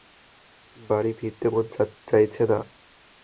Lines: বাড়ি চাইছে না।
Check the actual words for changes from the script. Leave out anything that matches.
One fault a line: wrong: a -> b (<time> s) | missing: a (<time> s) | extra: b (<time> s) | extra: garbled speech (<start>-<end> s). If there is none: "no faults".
extra: ফিরতে মন (1.2 s)